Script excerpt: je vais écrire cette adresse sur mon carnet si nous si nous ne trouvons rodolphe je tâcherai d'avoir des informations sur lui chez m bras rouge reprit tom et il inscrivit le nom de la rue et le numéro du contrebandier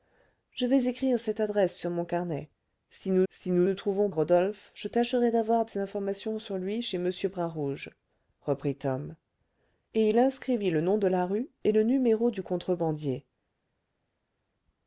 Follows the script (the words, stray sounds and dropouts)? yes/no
yes